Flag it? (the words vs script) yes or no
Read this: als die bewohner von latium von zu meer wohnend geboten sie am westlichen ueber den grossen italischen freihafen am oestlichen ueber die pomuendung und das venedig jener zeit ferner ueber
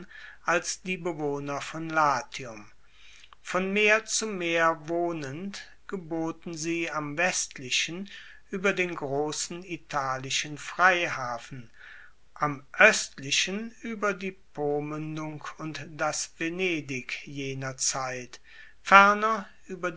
yes